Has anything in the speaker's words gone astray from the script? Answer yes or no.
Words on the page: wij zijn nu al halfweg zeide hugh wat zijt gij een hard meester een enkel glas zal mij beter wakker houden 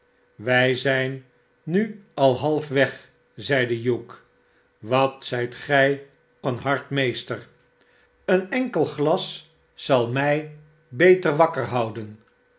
no